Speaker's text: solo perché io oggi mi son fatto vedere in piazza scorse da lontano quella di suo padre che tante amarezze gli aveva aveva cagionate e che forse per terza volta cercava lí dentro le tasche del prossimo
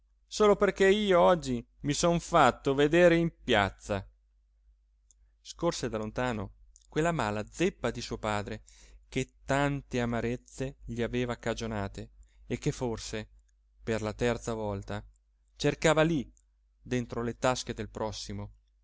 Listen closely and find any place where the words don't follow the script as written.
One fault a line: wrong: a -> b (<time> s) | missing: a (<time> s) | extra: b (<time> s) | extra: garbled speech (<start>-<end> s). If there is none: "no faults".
extra: mala zeppa (7.1 s)
missing: aveva (11.4 s)
extra: la (14.0 s)